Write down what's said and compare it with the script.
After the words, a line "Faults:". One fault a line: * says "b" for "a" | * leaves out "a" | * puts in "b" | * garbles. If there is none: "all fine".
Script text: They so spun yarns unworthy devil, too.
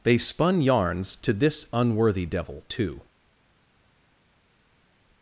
They spun yarns to this unworthy devil, too.
Faults:
* leaves out "so"
* puts in "to this"